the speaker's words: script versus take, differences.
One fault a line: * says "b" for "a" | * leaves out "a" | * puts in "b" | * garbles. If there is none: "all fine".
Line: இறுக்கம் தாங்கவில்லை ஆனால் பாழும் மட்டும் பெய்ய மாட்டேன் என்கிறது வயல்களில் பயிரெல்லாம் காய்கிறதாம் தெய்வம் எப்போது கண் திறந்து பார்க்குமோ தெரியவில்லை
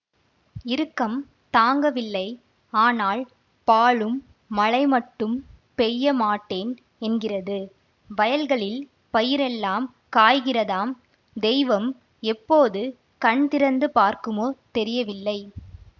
* puts in "மழை"